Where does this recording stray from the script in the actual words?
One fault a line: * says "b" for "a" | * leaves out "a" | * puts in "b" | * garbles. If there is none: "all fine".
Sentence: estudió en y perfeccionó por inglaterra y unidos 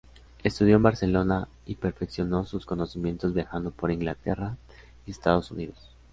* puts in "barcelona"
* puts in "sus conocimientos viajando"
* puts in "estados"